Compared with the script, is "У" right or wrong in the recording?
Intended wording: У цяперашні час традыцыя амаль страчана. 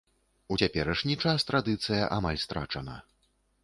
right